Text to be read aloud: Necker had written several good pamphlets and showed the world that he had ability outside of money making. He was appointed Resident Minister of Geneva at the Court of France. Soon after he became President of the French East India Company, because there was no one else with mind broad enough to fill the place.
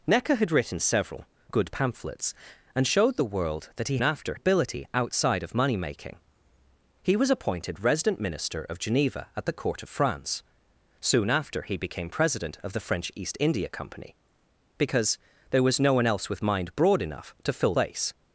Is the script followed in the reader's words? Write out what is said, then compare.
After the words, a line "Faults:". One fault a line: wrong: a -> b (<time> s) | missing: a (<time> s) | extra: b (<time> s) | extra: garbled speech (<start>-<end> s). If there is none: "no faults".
Necker had written several good pamphlets and showed the world that he after ability outside of money making. He was appointed Resident Minister of Geneva at the Court of France. Soon after he became President of the French East India Company, because there was no one else with mind broad enough to fill place.
Faults:
wrong: had -> after (4.0 s)
missing: the (17.8 s)